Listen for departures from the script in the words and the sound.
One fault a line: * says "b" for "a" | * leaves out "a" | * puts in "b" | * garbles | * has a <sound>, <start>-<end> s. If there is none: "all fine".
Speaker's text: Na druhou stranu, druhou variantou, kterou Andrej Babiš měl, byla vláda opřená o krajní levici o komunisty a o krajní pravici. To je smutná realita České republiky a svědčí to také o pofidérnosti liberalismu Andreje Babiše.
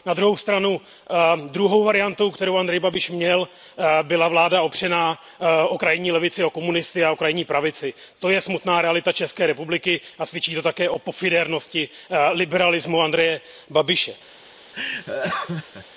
* has a laugh, 14.7-15.9 s